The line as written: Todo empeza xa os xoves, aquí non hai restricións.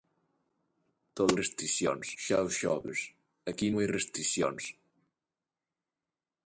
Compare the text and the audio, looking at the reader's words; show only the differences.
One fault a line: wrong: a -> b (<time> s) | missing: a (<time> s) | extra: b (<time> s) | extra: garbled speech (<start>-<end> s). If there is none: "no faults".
wrong: empeza -> restricións (1.4 s)
missing: non (3.7 s)